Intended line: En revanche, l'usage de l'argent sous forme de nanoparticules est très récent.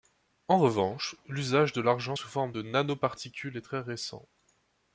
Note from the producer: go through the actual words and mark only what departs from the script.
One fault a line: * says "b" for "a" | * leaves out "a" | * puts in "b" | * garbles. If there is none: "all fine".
all fine